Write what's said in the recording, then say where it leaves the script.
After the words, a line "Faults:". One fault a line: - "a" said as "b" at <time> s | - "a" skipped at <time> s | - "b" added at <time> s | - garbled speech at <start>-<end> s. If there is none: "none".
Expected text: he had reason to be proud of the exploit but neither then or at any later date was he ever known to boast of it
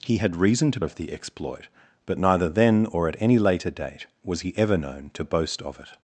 he had reason to of the exploit but neither then or at any later date was he ever known to boast of it
Faults:
- "be proud" skipped at 0.8 s